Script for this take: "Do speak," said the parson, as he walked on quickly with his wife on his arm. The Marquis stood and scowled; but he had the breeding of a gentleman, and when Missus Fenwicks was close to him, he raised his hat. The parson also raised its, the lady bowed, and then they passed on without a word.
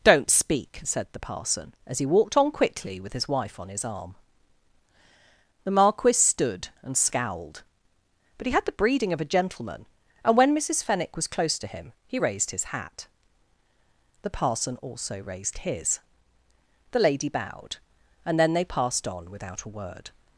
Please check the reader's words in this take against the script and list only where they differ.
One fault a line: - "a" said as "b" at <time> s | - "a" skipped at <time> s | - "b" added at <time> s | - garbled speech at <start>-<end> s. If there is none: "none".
- "Do" said as "Don't" at 0.0 s
- "Fenwicks" said as "Fenwick" at 10.8 s
- "its" said as "his" at 15.6 s